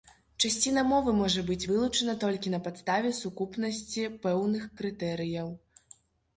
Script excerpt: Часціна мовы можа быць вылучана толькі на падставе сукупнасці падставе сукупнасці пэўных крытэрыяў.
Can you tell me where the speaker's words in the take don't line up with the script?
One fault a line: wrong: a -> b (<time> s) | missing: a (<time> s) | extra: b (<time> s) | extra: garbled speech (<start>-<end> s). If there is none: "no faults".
missing: падставе сукупнасці (4.1 s)